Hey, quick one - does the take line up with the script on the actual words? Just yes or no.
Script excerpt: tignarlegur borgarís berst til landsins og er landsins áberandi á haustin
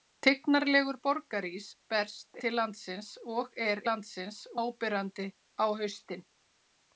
yes